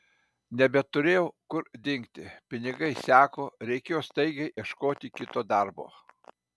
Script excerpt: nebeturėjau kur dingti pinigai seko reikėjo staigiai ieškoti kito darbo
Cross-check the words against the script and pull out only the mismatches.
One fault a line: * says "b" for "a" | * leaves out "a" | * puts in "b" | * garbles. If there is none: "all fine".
all fine